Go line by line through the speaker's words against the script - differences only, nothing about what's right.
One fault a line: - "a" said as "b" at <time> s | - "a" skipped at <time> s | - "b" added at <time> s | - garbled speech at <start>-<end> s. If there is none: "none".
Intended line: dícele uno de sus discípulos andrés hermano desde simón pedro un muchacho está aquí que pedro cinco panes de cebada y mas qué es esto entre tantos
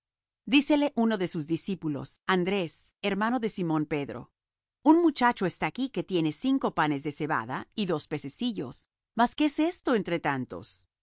- "desde" said as "de" at 3.4 s
- "pedro" said as "tiene" at 6.0 s
- "dos pececillos" added at 7.8 s